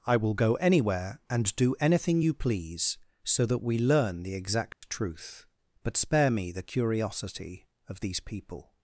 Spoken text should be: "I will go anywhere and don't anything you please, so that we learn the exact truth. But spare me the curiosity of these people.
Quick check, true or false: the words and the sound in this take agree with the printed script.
false